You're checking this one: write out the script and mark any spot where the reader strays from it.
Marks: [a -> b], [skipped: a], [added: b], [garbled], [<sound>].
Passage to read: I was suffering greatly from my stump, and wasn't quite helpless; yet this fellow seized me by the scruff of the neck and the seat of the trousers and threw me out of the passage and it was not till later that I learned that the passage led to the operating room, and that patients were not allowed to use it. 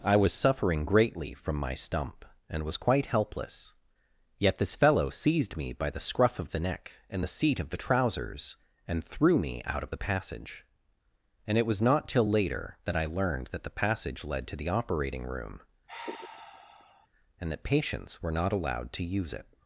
I was suffering greatly from my stump, and [wasn't -> was] quite helpless; yet this fellow seized me by the scruff of the neck and the seat of the trousers and threw me out of the passage and it was not till later that I learned that the passage led to the operating room, [sigh] and that patients were not allowed to use it.